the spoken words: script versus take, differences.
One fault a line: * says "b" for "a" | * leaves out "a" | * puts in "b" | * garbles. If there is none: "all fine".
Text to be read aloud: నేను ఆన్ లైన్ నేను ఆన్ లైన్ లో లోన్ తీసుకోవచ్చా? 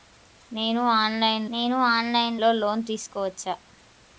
all fine